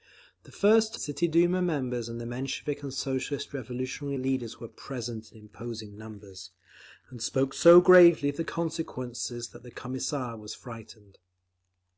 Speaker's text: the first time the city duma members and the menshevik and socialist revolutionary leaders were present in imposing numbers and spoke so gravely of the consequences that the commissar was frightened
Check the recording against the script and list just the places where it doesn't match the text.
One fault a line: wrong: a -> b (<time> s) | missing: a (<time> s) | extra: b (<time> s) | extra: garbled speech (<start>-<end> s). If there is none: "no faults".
missing: time the (0.9 s)